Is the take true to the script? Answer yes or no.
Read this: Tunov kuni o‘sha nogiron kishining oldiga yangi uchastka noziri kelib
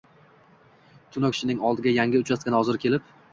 no